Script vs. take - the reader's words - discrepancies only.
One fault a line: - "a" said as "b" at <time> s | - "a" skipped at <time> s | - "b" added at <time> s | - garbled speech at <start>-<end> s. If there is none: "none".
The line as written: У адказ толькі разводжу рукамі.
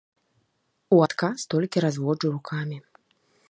none